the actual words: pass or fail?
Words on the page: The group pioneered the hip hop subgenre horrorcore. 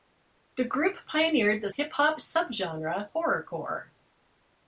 pass